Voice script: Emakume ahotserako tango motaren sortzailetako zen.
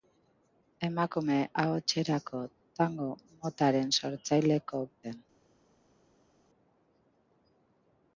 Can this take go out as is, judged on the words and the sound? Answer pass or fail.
pass